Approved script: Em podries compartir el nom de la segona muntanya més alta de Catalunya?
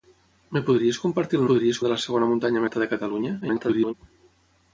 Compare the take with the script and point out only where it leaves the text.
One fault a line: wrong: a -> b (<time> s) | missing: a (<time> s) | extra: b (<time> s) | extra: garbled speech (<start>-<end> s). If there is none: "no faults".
wrong: nom -> podries (1.5 s)
missing: més (2.6 s)
extra: garbled speech (3.4-3.9 s)